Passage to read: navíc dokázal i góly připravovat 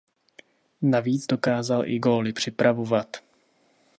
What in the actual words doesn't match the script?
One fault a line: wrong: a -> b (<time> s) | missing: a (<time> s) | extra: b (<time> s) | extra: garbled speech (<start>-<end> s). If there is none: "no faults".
no faults